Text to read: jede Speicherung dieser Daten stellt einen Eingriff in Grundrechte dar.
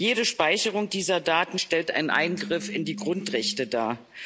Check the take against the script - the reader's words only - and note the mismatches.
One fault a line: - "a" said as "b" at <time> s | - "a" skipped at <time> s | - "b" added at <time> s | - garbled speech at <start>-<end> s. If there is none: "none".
- "die" added at 2.8 s